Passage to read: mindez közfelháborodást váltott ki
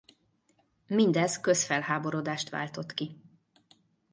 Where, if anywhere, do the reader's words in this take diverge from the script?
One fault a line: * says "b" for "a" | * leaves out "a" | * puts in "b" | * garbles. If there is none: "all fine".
all fine